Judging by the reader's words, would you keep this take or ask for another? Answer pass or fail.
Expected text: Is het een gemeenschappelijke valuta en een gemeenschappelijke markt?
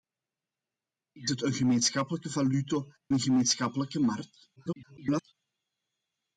fail